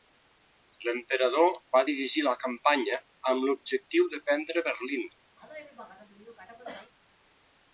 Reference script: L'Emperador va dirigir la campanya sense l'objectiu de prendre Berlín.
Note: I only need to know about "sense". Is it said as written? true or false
false